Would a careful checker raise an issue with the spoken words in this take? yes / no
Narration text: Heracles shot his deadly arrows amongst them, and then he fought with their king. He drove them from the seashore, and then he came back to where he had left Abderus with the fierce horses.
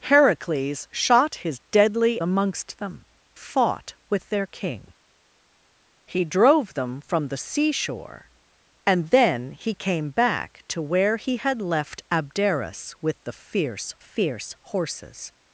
yes